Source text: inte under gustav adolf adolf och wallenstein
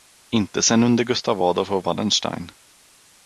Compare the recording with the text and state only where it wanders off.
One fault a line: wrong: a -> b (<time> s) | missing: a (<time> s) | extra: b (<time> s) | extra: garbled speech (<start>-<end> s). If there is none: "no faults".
extra: sen (0.6 s)
missing: adolf (1.7 s)